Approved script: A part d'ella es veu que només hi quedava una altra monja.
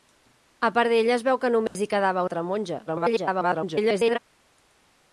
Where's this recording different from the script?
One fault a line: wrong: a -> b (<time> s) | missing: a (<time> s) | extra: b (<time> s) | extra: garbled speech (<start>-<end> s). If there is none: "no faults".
missing: una (2.2 s)
extra: garbled speech (2.9-4.2 s)